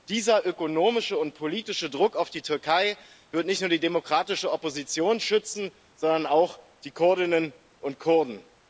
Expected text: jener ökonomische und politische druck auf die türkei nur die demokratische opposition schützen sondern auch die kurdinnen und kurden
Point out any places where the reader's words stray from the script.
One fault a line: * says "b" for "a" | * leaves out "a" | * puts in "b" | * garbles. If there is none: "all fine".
* says "dieser" for "jener"
* puts in "wird nicht"